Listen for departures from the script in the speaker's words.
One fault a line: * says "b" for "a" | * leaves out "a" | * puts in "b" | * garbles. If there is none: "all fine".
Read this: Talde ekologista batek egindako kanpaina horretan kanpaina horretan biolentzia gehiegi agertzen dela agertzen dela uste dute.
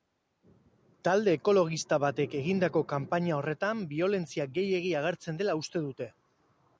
* leaves out "kanpaina horretan"
* leaves out "agertzen dela"